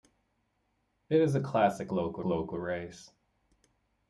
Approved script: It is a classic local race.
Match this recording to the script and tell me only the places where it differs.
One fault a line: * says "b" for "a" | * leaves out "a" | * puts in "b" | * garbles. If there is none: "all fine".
* puts in "local"